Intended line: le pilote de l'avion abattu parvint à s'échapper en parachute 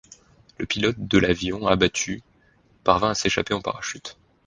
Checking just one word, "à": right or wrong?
right